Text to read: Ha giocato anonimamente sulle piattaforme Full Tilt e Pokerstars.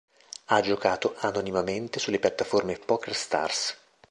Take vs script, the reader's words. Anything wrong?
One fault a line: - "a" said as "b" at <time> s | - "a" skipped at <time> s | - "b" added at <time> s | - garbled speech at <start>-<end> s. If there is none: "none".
- "Full Tilt e" skipped at 2.8 s